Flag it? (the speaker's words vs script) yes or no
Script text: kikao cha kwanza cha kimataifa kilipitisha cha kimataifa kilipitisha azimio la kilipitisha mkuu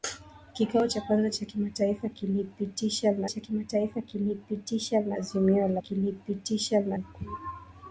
no